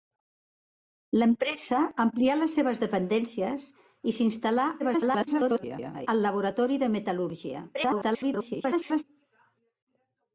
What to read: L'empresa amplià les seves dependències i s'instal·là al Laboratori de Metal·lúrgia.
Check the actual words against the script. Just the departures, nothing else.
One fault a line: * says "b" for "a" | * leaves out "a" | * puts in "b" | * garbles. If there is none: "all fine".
* garbles
* garbles